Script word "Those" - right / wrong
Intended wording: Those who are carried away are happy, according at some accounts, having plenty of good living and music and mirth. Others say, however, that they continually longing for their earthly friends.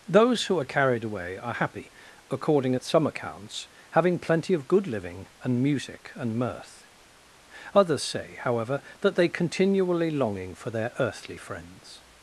right